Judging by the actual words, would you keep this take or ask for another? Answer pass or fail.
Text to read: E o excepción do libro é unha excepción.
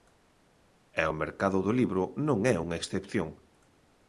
fail